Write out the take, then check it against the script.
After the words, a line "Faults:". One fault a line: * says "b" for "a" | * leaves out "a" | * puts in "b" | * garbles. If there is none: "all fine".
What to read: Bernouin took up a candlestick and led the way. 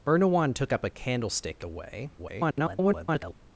Bernouin took up a candlestick the way. [garbled]
Faults:
* leaves out "and led"
* garbles